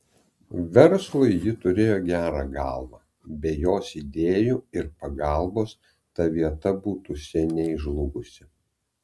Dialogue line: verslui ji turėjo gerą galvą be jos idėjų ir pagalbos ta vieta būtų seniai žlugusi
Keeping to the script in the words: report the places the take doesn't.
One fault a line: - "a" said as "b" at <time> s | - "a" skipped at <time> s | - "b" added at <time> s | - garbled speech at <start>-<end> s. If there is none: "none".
none